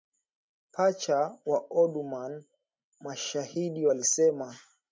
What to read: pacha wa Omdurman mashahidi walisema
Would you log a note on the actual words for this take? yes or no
no